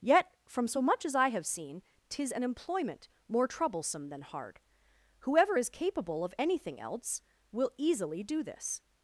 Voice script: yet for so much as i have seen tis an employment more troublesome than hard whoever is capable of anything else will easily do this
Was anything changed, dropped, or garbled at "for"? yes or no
yes